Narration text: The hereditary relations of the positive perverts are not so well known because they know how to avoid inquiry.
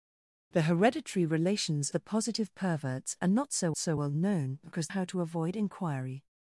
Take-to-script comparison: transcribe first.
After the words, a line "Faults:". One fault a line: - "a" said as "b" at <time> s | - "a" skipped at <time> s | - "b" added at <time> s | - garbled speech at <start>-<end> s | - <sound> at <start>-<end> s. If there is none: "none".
The hereditary relations the positive perverts are not so so well known because how to avoid inquiry.
Faults:
- "of" skipped at 1.9 s
- "so" added at 3.8 s
- "they know" skipped at 4.9 s